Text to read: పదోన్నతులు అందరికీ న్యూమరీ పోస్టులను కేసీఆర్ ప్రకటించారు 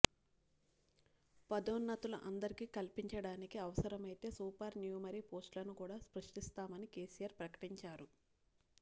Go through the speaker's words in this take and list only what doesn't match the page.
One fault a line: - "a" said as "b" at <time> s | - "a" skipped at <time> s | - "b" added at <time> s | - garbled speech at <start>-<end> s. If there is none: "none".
- "కల్పించడానికి అవసరమైతే సూపర్" added at 2.8 s
- "కూడా సృష్టిస్తామని" added at 5.8 s